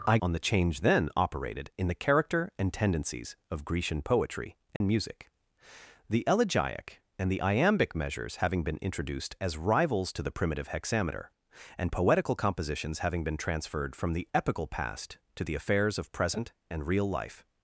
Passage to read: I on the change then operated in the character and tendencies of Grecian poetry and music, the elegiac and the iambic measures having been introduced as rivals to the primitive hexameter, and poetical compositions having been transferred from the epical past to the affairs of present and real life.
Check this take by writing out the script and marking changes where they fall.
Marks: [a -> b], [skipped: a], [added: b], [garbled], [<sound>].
I on the change then operated in the character and tendencies of Grecian poetry and [dropout] music, the elegiac and the iambic measures having been introduced as rivals to the primitive hexameter, and poetical compositions having been transferred from the epical past to the affairs of present and real life.